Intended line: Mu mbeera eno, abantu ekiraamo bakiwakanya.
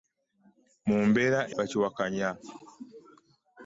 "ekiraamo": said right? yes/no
no